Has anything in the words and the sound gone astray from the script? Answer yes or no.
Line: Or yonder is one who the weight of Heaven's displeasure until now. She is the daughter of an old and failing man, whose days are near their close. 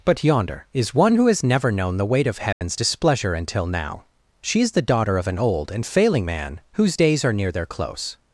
yes